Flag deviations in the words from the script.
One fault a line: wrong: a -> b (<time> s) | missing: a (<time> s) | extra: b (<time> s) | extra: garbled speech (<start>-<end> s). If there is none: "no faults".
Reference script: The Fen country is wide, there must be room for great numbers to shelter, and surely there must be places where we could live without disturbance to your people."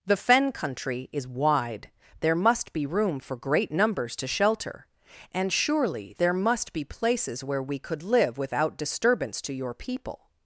no faults